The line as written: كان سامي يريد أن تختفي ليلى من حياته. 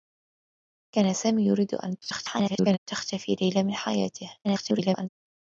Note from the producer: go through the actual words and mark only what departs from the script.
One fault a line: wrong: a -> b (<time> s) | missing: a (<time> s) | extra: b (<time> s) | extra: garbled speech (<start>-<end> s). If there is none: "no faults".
extra: garbled speech (2.0-2.8 s)
extra: garbled speech (4.4-5.1 s)